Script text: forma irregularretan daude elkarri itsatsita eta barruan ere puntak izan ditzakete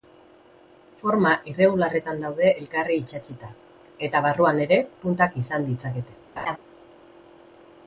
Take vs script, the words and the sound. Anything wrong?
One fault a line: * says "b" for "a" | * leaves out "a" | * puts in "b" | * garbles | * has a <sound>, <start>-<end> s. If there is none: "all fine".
* has a laugh, 6.4-6.6 s